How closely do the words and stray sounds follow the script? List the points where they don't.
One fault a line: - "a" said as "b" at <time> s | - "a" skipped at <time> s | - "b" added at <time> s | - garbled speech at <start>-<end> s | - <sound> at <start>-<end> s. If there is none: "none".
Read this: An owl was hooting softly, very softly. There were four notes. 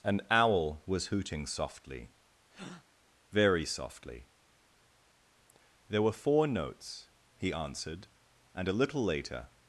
- breath at 2.5-2.8 s
- "He answered and a little later" added at 7.4 s